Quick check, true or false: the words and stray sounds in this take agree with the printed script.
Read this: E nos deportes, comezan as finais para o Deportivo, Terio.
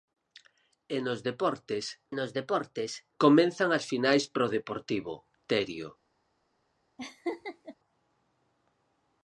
false